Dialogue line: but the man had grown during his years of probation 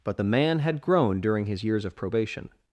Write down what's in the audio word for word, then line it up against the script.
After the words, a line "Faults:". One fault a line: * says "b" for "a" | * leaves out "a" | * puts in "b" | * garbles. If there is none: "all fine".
but the man had grown during his years of probation
Faults:
all fine